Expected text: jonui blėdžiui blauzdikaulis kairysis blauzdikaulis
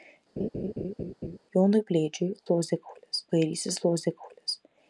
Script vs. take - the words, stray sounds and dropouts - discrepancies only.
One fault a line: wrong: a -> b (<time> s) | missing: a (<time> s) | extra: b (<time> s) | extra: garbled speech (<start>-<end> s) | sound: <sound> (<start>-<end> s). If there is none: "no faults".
sound: laugh (0.4-1.4 s)